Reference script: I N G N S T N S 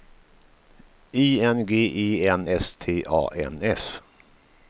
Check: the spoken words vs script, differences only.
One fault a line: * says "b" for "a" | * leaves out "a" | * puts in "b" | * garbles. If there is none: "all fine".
* puts in "E"
* puts in "A"